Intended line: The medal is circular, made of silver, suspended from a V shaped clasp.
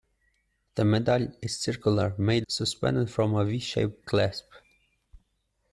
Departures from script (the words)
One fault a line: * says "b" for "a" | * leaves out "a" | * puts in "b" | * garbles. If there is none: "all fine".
* leaves out "of silver"